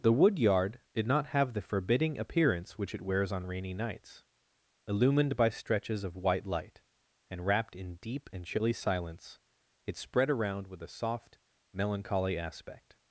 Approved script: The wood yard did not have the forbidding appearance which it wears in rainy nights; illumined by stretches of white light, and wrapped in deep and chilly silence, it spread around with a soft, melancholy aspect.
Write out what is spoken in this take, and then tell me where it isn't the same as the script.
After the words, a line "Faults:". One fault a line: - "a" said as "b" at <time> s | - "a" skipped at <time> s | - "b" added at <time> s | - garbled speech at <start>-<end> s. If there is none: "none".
The wood yard did not have the forbidding appearance which it wears on rainy nights; illumined by stretches of white light, and wrapped in deep and chilly silence, it spread around with a soft, melancholy aspect.
Faults:
- "in" said as "on" at 3.3 s